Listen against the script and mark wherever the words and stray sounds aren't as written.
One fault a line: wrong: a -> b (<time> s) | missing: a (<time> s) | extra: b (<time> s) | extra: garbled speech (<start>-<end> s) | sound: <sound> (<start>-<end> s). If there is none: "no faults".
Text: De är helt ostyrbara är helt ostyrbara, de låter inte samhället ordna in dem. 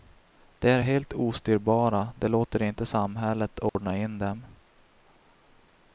missing: är helt ostyrbara (2.1 s)
sound: dropout (3.7-3.8 s)